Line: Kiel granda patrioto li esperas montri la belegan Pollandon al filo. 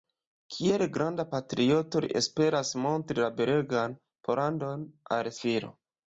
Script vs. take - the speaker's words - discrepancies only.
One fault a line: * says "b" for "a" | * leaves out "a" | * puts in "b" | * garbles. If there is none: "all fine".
all fine